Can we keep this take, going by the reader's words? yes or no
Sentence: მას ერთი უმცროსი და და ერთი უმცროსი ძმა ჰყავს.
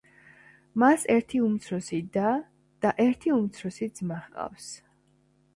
yes